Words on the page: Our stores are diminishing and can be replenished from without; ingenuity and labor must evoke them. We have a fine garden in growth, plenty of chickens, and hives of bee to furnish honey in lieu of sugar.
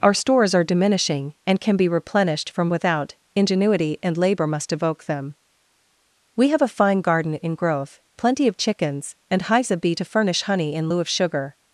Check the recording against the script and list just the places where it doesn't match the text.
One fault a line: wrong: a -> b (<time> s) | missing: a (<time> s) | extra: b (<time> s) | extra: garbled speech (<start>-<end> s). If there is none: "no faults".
no faults